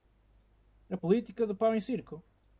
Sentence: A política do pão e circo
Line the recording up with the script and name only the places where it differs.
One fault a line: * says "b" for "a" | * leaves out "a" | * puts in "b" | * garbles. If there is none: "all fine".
all fine